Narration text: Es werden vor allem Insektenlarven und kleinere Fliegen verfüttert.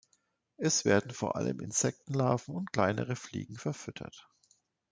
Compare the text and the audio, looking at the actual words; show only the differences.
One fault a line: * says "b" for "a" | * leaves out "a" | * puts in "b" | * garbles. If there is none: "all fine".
all fine